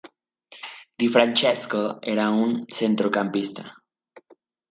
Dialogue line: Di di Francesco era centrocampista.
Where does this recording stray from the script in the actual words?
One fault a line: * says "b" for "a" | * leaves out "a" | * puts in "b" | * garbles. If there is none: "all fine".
* leaves out "di"
* puts in "un"